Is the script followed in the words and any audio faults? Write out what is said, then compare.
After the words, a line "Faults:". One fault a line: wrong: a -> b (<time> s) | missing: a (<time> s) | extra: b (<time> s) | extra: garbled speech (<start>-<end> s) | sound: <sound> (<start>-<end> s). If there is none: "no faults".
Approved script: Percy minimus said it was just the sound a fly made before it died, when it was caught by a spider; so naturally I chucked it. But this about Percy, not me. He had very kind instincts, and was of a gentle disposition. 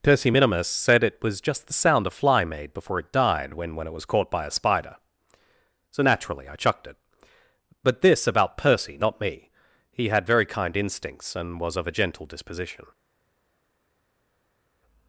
Percy minimus said it was just the sound a fly made before it died, when when it was caught by a spider; so naturally I chucked it. But this about Percy, not me. He had very kind instincts, and was of a gentle disposition.
Faults:
extra: when (3.8 s)